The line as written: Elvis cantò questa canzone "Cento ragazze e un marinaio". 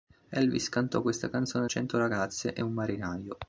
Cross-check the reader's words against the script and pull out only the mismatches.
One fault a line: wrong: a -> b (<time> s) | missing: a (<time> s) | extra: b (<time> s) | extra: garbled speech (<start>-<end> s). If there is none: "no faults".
no faults